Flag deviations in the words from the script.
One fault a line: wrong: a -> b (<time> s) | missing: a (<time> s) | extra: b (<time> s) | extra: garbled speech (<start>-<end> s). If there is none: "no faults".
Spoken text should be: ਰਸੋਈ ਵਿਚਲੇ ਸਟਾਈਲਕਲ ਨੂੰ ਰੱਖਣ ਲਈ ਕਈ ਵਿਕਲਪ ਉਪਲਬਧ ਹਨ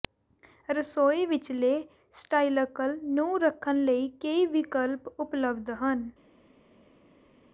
no faults